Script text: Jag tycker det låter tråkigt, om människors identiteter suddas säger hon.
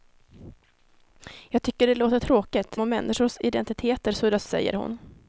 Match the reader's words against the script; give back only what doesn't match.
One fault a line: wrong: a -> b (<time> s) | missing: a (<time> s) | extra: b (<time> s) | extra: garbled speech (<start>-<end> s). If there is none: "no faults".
no faults